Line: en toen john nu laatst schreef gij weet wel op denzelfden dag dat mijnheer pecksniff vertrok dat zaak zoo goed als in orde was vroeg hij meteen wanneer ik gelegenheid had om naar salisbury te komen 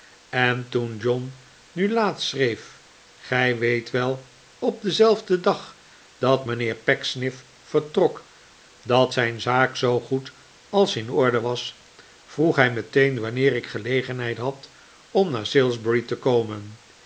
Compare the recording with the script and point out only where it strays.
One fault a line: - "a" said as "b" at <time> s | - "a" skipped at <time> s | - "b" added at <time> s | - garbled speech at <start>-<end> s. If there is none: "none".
- "zijn" added at 9.1 s